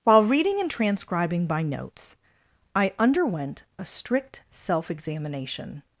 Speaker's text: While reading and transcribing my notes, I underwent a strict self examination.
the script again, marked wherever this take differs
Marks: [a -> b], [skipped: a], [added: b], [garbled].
While reading and transcribing [my -> by] notes, I underwent a strict self examination.